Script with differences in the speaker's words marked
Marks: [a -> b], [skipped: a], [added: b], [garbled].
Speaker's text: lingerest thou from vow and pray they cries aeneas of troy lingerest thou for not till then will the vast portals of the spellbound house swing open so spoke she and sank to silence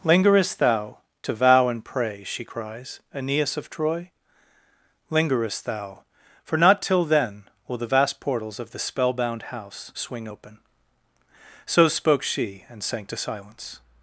lingerest thou [from -> to] vow and pray [they -> she] cries aeneas of troy lingerest thou for not till then will the vast portals of the spellbound house swing open so spoke she and sank to silence